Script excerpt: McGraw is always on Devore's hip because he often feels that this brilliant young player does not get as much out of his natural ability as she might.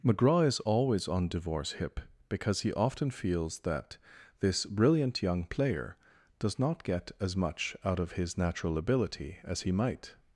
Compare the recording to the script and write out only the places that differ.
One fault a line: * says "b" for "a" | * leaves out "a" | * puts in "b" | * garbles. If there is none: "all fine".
* says "he" for "she"